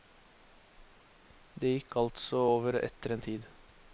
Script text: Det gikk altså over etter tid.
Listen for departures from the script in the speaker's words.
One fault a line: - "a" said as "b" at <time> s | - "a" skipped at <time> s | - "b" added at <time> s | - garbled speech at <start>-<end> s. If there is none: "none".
- "en" added at 3.1 s